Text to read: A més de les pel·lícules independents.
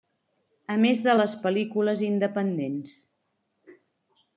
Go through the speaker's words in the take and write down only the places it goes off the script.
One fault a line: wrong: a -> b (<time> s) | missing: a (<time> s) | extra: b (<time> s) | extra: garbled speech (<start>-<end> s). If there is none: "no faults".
no faults